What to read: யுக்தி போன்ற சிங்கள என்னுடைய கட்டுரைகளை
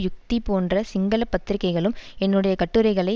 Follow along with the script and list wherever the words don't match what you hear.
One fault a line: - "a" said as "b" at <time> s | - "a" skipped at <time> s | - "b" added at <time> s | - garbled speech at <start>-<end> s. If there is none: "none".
- "பத்திரிகைகளும்" added at 1.3 s